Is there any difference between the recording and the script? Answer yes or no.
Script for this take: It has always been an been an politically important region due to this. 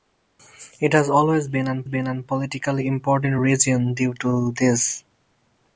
no